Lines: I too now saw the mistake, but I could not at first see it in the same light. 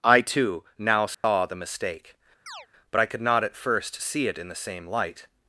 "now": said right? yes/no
yes